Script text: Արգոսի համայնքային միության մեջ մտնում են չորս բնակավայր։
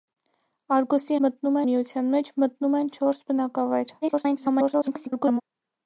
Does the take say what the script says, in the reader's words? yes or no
no